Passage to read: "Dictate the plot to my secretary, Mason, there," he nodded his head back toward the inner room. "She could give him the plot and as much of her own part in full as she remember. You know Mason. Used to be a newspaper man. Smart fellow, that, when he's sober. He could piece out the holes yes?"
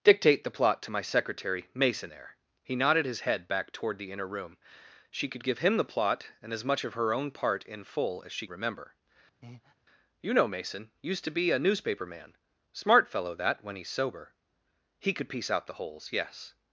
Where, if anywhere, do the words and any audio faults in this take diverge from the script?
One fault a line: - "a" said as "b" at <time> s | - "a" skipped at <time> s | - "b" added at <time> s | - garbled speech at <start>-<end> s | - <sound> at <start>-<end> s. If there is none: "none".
- breath at 9.4-9.7 s